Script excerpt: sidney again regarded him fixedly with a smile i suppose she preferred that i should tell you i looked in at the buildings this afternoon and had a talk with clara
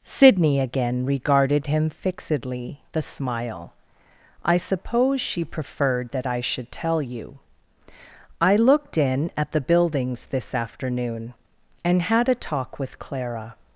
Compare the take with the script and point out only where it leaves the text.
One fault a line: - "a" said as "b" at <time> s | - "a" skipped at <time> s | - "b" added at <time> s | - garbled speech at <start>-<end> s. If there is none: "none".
- "with" skipped at 2.8 s